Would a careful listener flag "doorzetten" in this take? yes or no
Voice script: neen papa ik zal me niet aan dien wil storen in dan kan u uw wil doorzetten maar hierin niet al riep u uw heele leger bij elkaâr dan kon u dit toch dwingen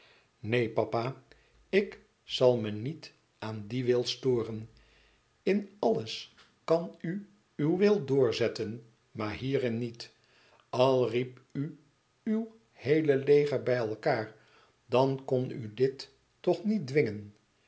no